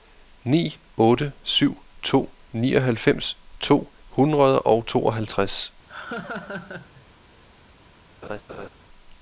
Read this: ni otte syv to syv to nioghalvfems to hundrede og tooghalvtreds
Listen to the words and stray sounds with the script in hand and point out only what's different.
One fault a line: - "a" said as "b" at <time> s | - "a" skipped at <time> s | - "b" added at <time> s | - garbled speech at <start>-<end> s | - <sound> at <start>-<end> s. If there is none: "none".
- "syv to" skipped at 2.3 s
- laugh at 5.9-7.1 s
- laugh at 8.2-8.7 s